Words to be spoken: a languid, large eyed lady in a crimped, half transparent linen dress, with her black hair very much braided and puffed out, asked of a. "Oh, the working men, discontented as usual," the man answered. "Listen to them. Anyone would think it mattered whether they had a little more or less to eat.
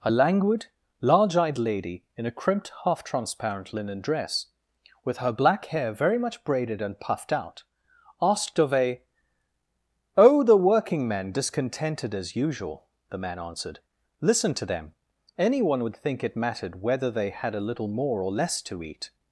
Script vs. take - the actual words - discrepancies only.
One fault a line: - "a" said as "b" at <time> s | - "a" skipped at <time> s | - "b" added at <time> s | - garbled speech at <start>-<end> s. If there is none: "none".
none